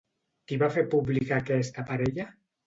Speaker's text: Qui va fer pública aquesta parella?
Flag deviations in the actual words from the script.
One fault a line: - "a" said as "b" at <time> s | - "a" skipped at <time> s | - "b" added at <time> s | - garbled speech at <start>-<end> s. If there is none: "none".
none